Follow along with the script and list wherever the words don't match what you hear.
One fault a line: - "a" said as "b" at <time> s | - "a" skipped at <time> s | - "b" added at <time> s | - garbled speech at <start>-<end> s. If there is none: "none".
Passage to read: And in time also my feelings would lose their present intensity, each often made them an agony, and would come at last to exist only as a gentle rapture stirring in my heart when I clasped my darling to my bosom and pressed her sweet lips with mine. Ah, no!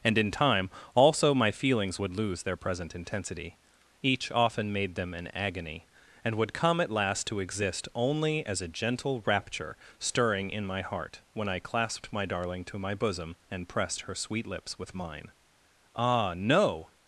none